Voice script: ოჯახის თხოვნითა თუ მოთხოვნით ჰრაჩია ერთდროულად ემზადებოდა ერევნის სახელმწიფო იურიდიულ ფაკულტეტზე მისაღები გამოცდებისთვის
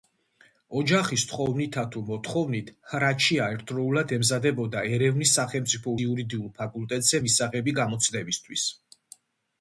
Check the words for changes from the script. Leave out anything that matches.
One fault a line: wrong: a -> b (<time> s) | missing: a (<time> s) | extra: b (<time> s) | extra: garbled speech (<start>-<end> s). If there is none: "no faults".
no faults